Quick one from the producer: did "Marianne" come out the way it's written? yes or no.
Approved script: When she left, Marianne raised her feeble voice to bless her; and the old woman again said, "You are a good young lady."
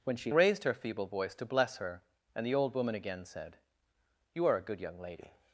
no